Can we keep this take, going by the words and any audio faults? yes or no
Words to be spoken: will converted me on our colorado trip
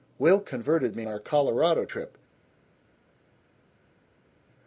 no